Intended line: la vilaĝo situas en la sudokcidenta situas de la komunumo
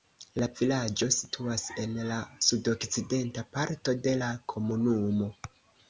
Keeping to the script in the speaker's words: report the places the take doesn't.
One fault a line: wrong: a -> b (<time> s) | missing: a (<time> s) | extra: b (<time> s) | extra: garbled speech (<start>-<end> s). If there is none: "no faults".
wrong: situas -> parto (3.6 s)